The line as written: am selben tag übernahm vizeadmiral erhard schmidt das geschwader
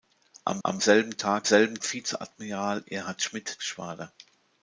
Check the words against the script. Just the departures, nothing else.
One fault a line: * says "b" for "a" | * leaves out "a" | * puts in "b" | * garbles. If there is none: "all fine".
* puts in "am"
* says "selben" for "übernahm"
* leaves out "das"